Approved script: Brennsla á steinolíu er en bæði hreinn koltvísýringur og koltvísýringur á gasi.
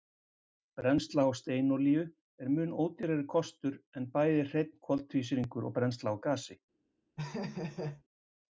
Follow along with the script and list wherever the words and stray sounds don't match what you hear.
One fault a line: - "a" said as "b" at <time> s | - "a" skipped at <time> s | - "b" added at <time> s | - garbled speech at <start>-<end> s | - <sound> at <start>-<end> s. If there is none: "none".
- "mun ódýrari kostur" added at 2.5 s
- "koltvísýringur" said as "brennsla" at 5.8 s
- laugh at 7.2-8.0 s